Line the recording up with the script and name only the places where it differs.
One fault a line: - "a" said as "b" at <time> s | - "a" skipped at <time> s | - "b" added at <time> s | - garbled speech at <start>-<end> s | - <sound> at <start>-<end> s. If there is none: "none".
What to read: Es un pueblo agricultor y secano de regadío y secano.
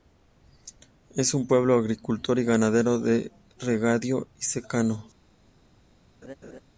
- "secano" said as "ganadero" at 2.4 s
- laugh at 6.2-6.6 s